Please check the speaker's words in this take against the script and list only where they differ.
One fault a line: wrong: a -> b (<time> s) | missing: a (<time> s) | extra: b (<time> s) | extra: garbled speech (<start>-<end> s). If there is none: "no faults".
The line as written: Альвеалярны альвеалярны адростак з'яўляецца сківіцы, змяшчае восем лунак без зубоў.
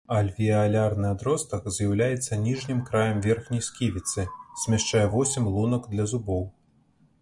missing: альвеалярны (1.1 s)
extra: ніжнім краем верхняй (2.5 s)
wrong: без -> для (6.0 s)